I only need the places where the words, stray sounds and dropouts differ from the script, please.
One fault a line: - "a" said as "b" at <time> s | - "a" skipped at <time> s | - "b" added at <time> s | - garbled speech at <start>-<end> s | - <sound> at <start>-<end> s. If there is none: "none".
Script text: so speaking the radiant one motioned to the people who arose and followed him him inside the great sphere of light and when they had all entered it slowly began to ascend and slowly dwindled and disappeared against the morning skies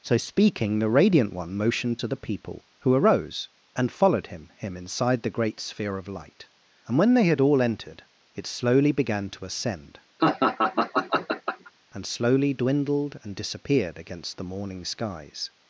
- laugh at 10.2-11.7 s